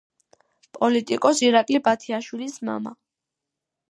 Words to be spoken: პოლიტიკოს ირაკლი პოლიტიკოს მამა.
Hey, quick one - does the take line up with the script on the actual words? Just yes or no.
no